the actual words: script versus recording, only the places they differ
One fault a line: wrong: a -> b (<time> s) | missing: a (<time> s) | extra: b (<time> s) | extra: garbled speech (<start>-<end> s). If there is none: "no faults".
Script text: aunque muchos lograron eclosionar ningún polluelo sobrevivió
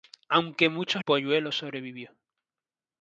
missing: lograron eclosionar ningún (1.0 s)